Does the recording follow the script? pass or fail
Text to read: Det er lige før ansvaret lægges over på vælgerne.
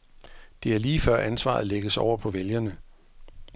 pass